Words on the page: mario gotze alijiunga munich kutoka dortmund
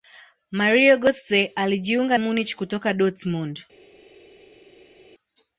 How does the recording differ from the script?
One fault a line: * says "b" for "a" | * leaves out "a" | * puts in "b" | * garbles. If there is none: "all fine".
all fine